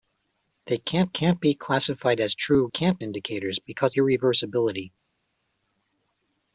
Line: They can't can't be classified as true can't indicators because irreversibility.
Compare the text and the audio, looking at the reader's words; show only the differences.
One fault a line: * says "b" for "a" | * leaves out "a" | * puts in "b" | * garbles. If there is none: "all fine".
all fine